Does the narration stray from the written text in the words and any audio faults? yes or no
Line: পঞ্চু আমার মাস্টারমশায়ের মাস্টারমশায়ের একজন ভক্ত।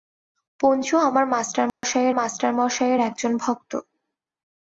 yes